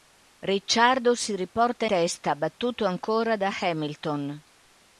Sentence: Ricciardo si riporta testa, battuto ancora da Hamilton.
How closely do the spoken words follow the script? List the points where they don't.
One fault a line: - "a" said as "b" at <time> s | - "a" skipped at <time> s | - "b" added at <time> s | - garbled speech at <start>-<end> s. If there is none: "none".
none